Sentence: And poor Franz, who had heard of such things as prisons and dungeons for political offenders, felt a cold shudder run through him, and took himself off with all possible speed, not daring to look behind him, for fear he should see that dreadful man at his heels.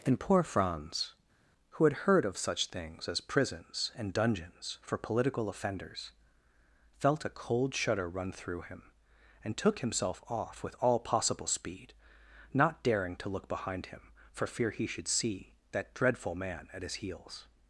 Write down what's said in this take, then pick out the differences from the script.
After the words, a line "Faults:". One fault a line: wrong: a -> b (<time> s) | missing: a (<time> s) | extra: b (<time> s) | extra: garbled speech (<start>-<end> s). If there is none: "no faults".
And poor Franz, who had heard of such things as prisons and dungeons for political offenders, felt a cold shudder run through him, and took himself off with all possible speed, not daring to look behind him, for fear he should see that dreadful man at his heels.
Faults:
no faults